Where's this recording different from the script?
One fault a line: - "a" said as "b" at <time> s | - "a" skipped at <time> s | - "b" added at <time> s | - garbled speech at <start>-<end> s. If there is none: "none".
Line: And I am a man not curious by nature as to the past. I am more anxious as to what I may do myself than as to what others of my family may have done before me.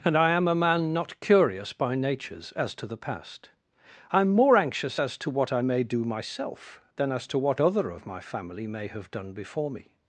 - "nature" said as "natures" at 1.9 s
- "others" said as "other" at 7.6 s